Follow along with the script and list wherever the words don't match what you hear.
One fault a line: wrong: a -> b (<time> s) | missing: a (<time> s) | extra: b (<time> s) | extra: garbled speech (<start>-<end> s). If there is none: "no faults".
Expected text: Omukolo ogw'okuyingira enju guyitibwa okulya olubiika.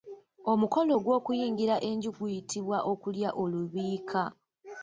no faults